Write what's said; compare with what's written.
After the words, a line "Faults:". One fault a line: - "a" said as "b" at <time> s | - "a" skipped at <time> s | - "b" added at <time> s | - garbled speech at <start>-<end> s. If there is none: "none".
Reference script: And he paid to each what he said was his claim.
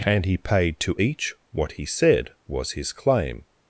And he paid to each what he said was his claim.
Faults:
none